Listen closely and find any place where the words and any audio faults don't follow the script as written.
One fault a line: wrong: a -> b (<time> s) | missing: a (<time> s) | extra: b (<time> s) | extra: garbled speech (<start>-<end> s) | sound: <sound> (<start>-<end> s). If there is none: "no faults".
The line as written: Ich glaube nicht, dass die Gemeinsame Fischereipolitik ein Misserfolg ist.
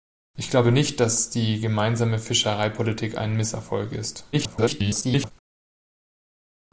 extra: garbled speech (4.3-5.3 s)